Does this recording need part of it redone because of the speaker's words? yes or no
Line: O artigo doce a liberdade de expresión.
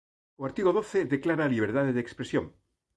yes